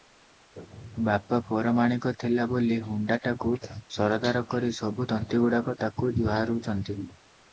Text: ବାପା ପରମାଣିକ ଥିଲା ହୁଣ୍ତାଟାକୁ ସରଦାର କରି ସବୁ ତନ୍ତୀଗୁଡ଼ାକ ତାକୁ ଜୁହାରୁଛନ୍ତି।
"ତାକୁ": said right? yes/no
yes